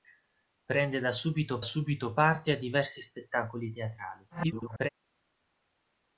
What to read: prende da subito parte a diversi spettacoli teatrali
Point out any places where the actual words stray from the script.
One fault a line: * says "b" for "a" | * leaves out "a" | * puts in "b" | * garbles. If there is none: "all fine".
* puts in "subito"
* garbles